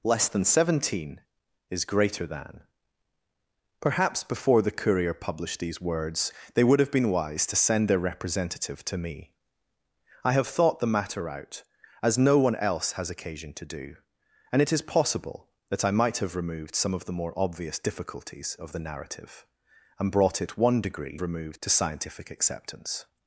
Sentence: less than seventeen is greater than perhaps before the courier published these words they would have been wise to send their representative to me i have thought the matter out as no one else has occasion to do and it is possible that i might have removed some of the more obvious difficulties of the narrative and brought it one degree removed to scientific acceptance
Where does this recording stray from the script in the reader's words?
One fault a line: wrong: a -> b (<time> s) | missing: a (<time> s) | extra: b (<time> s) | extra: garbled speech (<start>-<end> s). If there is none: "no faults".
no faults